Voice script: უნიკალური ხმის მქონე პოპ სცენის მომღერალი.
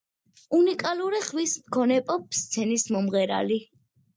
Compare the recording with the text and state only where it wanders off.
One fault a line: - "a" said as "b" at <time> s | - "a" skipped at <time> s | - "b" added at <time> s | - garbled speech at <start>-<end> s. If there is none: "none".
none